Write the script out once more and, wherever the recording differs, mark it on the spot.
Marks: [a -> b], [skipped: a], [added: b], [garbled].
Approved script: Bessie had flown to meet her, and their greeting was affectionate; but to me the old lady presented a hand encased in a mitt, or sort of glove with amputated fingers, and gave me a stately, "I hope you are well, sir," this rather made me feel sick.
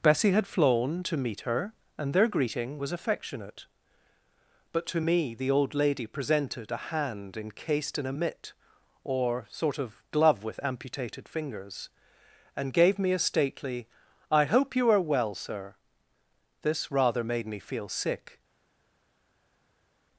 Bessie had flown to meet her, and their greeting was affectionate; but to me the old lady presented a hand encased in a mitt, or sort of glove with amputated fingers, and gave me a stately, "I hope you are well, sir," this rather made me feel sick.